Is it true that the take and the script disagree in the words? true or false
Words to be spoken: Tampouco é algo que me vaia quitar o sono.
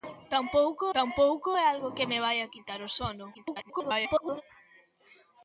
true